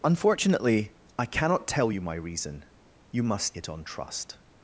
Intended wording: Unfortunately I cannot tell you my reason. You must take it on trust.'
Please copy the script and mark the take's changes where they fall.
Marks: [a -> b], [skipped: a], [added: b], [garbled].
Unfortunately I cannot tell you my reason. You must [skipped: take] it on trust.'